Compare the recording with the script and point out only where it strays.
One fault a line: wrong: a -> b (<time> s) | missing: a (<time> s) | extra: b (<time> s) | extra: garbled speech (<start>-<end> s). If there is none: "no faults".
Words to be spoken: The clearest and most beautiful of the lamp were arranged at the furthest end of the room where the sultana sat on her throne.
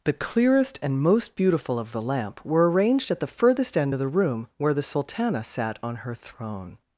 no faults